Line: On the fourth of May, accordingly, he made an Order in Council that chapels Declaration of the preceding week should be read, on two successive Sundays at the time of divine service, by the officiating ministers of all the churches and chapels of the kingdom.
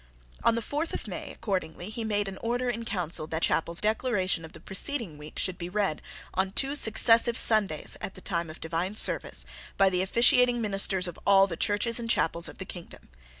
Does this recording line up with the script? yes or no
yes